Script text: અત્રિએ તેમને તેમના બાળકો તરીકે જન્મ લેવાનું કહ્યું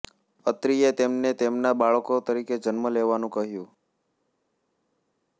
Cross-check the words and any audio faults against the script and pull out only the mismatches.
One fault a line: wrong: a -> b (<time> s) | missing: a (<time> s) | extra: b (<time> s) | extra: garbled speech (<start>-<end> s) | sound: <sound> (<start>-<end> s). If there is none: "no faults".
no faults